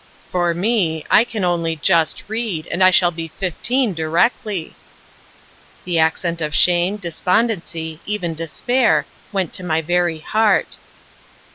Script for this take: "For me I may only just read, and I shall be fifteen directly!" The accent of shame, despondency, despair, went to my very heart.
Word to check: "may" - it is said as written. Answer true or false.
false